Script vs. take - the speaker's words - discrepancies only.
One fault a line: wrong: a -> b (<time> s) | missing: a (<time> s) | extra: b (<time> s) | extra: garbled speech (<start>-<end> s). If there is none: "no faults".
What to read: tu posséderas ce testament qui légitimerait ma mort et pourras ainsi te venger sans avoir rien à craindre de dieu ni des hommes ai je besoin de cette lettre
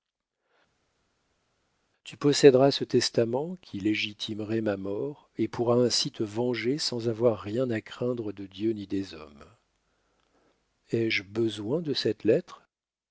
no faults